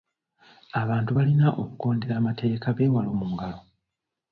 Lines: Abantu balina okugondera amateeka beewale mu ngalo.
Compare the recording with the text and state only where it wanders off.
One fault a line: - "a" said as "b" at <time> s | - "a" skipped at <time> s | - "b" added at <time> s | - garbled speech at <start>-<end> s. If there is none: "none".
none